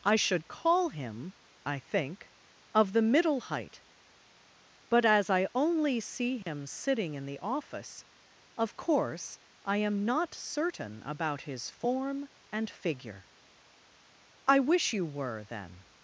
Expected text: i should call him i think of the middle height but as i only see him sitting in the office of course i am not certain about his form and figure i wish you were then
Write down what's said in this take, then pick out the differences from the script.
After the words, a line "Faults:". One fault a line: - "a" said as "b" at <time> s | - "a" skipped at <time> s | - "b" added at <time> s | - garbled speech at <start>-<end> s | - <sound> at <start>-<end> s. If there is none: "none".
i should call him i think of the middle height but as i only see him sitting in the office of course i am not certain about his form and figure i wish you were then
Faults:
- dropout at 6.4-6.5 s